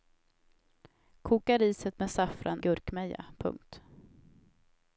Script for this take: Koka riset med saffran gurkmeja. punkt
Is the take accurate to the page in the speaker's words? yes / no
yes